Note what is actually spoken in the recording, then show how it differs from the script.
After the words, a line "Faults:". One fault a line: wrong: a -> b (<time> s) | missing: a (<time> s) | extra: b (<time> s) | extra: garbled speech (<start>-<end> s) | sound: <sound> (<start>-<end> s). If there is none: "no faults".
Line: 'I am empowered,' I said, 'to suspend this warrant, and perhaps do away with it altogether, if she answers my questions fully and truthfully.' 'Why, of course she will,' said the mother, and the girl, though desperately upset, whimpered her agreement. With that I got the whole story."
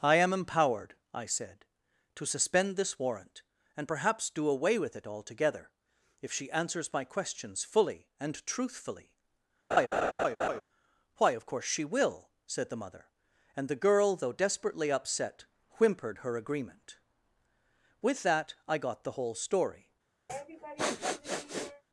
'I am empowered,' I said, 'to suspend this warrant, and perhaps do away with it altogether, if she answers my questions fully and truthfully.' 'Why, of course she will,' said the mother, and the girl, though desperately upset, whimpered her agreement. With that I got the whole story."
Faults:
sound: laugh (9.7-10.6 s)
sound: sniff (20.3-21.8 s)